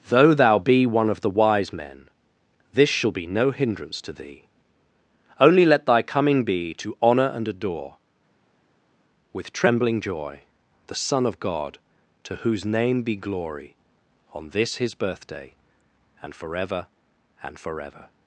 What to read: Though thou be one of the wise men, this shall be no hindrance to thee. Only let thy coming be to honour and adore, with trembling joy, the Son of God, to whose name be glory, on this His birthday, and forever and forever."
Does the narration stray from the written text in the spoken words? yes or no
no